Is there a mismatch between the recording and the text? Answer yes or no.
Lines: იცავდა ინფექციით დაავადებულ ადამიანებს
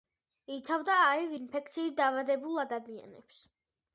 yes